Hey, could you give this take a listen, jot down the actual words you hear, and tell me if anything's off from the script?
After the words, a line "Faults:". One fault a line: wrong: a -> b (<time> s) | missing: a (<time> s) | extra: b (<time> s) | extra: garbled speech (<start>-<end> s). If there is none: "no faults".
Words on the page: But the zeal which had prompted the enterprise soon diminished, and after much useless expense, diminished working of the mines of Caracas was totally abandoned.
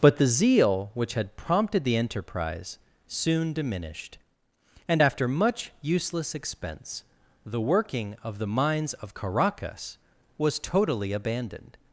But the zeal which had prompted the enterprise soon diminished, and after much useless expense, the working of the mines of Caracas was totally abandoned.
Faults:
wrong: diminished -> the (7.4 s)